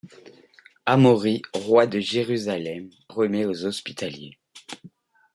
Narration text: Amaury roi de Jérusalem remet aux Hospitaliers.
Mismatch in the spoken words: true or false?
false